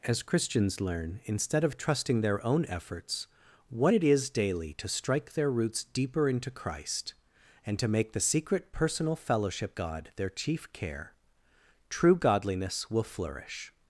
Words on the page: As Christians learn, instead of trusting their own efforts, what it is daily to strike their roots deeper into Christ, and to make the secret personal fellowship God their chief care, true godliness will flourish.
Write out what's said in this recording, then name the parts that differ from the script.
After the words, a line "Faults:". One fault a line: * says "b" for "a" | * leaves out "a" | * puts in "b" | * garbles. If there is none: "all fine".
As Christians learn, instead of trusting their own efforts, what it is daily to strike their roots deeper into Christ, and to make the secret personal fellowship God their chief care, true godliness will flourish.
Faults:
all fine